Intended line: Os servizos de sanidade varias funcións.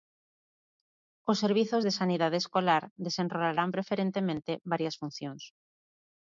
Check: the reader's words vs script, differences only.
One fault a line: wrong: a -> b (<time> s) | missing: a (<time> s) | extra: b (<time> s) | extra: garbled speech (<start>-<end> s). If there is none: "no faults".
extra: escolar desenrolarán preferentemente (2.4 s)